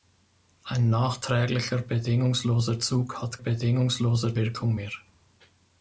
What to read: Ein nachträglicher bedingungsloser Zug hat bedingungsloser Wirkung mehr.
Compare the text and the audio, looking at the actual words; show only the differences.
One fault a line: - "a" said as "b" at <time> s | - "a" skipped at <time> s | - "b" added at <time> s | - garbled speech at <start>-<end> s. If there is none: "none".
none